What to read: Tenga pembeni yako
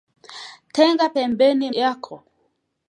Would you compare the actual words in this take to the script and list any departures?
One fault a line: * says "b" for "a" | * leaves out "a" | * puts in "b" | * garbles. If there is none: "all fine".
all fine